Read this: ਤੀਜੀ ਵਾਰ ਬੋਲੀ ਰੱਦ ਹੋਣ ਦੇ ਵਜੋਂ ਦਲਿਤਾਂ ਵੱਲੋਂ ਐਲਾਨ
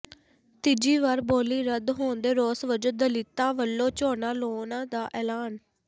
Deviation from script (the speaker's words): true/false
true